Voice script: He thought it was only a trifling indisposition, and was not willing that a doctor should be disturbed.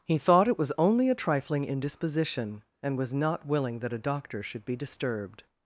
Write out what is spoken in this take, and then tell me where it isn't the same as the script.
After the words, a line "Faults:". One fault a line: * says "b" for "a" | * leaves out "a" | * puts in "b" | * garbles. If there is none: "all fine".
He thought it was only a trifling indisposition, and was not willing that a doctor should be disturbed.
Faults:
all fine